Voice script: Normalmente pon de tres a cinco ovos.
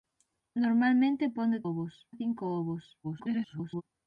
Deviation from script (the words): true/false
true